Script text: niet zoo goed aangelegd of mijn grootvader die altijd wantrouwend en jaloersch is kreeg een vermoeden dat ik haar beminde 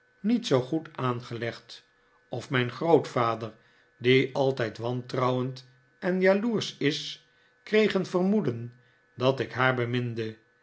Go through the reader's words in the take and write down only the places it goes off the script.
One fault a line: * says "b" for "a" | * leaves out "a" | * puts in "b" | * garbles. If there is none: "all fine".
all fine